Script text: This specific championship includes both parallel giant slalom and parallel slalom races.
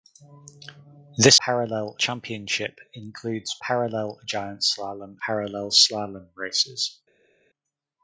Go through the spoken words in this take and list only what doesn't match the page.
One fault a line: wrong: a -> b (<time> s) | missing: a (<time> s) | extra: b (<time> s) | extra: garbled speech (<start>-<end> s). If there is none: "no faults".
wrong: specific -> parallel (1.4 s)
missing: both (3.6 s)
missing: and (5.2 s)